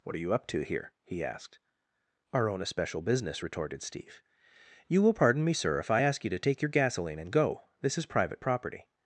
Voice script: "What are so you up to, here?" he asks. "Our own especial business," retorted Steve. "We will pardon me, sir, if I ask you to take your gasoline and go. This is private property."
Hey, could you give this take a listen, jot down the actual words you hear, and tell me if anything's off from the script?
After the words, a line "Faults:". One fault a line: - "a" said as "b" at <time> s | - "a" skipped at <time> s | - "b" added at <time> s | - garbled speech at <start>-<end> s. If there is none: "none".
"What are you up to, here?" he asked. "Our own especial business," retorted Steve. "You will pardon me, sir, if I ask you to take your gasoline and go. This is private property."
Faults:
- "so" skipped at 0.2 s
- "asks" said as "asked" at 1.2 s
- "We" said as "You" at 4.9 s